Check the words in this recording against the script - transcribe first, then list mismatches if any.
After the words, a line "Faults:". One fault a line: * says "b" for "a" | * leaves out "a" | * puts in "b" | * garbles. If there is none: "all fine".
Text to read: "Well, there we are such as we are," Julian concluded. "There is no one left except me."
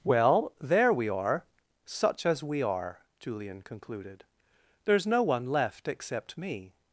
"Well, there we are such as we are," Julian concluded. "There is no one left except me."
Faults:
all fine